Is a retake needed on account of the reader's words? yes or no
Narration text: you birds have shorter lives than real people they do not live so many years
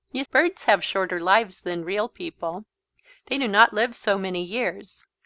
no